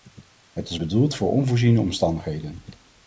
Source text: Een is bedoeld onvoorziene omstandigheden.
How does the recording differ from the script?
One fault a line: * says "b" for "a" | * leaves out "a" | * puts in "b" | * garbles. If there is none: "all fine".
* says "Het" for "Een"
* puts in "voor"